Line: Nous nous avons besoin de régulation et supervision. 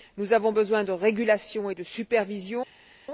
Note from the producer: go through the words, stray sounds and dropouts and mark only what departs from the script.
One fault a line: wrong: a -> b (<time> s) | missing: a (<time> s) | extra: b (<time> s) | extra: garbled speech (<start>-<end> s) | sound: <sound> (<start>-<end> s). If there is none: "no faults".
missing: nous (0.3 s)
extra: de (1.7 s)